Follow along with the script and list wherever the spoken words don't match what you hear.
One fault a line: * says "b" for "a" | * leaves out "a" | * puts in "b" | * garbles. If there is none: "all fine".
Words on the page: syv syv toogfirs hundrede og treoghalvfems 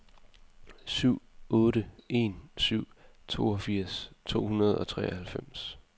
* puts in "otte en"
* puts in "to"